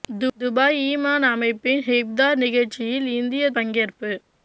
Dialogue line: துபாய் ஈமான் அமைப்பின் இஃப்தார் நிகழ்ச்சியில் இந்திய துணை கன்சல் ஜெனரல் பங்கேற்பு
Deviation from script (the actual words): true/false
true